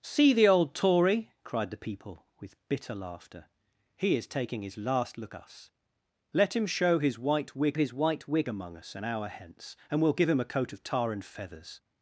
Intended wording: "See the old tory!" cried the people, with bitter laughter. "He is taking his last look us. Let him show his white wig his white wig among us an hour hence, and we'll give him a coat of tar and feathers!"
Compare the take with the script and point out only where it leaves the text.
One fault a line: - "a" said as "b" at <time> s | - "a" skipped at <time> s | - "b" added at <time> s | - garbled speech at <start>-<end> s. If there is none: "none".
none